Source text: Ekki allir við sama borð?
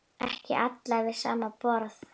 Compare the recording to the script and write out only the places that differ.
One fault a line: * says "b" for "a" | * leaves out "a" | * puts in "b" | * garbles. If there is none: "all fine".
all fine